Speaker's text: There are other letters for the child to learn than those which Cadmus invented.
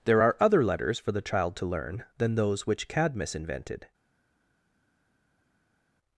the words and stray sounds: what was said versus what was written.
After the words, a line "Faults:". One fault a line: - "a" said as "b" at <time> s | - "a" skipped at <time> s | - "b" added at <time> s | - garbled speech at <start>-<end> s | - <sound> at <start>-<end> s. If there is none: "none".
There are other letters for the child to learn than those which Cadmus invented.
Faults:
none